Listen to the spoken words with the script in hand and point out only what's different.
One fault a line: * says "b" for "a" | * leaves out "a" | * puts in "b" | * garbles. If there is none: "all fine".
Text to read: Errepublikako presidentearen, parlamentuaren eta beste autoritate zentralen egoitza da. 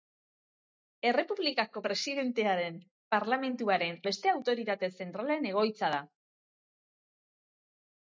* leaves out "eta"